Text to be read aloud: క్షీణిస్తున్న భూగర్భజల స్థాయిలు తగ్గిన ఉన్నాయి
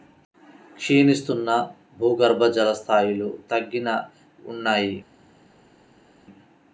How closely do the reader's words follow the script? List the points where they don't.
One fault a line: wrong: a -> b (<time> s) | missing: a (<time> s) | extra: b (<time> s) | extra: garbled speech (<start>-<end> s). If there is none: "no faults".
no faults